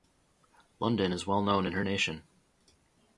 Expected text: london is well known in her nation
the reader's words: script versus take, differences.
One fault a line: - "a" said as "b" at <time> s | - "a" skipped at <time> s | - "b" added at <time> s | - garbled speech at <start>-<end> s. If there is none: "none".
none